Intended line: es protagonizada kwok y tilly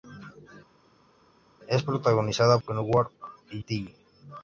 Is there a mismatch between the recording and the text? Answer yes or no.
no